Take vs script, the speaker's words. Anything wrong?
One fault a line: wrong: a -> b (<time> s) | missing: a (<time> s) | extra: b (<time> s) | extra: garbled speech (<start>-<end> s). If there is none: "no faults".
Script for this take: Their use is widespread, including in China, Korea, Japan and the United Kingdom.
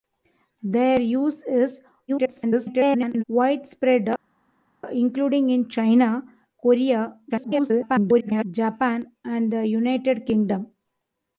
extra: garbled speech (2.1-3.2 s)
extra: garbled speech (7.3-8.4 s)